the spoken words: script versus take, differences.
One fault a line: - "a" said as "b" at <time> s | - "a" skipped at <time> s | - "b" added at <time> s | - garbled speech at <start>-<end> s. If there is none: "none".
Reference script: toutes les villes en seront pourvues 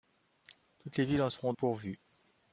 none